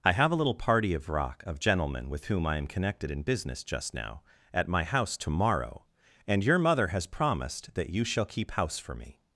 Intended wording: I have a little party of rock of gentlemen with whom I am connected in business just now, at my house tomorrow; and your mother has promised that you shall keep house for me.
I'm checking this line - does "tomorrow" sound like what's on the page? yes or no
yes